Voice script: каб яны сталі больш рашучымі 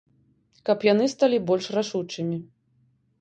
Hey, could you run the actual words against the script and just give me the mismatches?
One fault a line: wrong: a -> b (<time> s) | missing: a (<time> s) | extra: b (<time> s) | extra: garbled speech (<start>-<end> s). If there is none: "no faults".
no faults